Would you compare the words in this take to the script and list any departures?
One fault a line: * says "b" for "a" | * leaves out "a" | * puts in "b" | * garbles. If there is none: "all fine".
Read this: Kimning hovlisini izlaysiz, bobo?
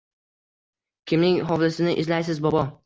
all fine